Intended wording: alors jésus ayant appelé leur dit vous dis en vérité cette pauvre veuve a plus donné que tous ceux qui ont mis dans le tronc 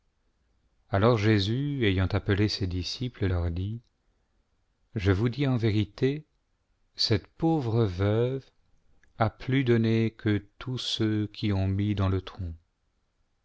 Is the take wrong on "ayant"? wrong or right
right